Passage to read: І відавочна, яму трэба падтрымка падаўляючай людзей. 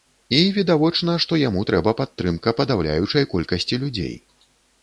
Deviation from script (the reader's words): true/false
true